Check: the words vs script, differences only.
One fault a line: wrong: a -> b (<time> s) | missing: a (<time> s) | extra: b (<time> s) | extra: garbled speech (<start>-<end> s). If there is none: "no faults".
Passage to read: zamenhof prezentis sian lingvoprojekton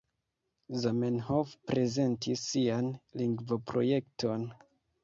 no faults